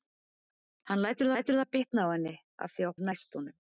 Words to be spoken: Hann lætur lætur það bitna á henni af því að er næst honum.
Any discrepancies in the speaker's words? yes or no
no